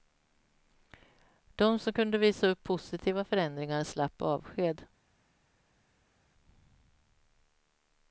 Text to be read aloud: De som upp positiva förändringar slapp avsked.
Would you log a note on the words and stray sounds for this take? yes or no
yes